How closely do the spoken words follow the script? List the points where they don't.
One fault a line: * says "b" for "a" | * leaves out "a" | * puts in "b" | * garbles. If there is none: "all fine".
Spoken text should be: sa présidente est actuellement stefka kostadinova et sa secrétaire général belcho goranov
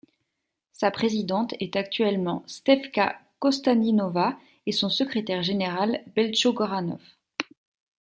* says "son" for "sa"